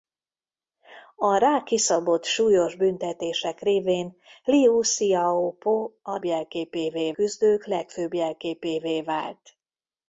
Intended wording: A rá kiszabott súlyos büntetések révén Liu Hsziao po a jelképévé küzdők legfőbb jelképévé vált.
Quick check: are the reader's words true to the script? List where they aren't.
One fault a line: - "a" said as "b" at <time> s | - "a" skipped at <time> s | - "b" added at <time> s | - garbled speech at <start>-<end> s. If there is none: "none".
none